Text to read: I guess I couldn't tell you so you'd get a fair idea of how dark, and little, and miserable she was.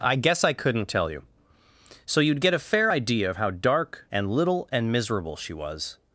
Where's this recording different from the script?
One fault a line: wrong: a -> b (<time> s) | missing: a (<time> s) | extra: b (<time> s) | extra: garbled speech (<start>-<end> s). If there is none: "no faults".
no faults